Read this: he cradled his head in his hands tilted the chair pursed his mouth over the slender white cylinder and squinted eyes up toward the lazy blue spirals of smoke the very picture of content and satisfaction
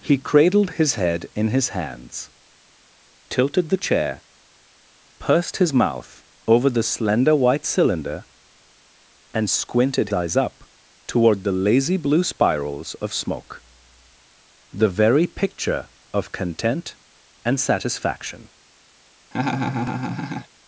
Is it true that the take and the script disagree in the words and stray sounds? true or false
true